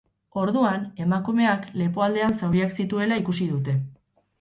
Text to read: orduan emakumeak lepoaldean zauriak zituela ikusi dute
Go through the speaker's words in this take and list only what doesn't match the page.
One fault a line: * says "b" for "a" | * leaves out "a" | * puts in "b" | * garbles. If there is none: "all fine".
all fine